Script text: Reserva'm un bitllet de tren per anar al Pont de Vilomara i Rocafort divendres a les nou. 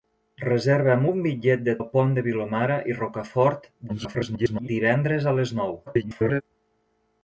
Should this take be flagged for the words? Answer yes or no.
yes